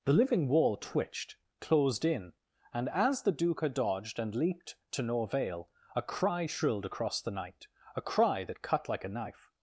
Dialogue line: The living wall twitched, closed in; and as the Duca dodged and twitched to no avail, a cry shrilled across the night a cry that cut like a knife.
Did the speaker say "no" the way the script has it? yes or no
yes